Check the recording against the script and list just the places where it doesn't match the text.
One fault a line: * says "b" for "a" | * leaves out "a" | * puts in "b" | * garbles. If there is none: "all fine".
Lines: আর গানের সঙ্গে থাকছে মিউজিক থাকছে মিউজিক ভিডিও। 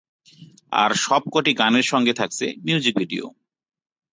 * puts in "সবকটি"
* leaves out "থাকছে মিউজিক"